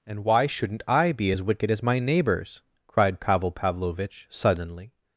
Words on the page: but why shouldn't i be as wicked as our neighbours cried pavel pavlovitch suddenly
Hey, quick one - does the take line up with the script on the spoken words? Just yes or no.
no